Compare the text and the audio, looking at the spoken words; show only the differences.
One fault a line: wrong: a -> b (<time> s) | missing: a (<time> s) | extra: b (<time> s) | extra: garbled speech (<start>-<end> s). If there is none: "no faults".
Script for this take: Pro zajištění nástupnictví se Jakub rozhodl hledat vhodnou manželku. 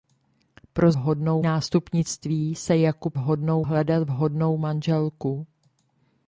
wrong: zajištění -> vhodnou (0.9 s)
wrong: rozhodl -> vhodnou (3.2 s)